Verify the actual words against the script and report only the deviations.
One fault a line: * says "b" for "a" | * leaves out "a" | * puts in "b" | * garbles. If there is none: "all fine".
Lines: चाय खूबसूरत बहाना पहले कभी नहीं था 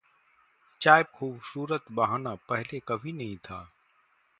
all fine